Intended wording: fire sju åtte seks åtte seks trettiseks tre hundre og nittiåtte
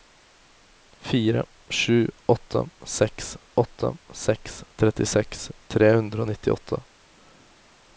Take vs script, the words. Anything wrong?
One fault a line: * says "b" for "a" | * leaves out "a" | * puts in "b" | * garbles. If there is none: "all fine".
all fine